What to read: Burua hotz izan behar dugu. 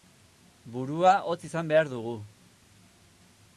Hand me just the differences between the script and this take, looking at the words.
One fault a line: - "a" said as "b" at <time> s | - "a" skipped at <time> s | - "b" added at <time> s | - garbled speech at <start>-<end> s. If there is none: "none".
none